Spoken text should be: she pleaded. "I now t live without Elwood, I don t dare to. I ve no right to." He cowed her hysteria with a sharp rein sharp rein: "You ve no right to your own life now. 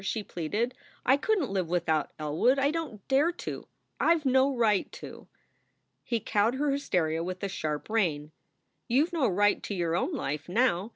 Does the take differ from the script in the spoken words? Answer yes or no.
yes